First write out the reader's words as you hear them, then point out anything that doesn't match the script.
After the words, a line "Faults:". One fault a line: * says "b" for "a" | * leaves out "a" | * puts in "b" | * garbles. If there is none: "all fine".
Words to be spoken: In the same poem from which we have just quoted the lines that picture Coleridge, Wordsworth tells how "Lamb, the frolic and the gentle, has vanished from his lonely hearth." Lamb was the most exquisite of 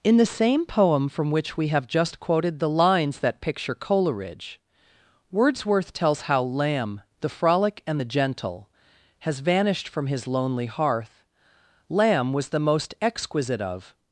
In the same poem from which we have just quoted the lines that picture Coleridge, Wordsworth tells how "Lamb, the frolic and the gentle, has vanished from his lonely hearth." Lamb was the most exquisite of
Faults:
all fine